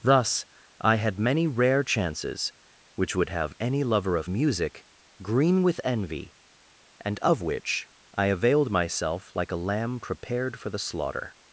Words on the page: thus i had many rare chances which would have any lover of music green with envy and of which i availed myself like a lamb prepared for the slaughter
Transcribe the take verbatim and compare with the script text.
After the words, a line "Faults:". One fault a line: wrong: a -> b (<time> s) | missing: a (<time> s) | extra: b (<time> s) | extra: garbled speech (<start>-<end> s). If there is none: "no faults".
thus i had many rare chances which would have any lover of music green with envy and of which i availed myself like a lamb prepared for the slaughter
Faults:
no faults